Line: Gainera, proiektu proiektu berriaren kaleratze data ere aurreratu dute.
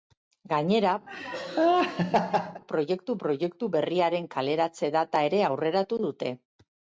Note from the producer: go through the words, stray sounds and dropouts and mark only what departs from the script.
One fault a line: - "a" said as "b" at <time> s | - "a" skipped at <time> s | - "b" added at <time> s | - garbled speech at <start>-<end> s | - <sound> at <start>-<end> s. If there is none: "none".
- laugh at 1.1-2.6 s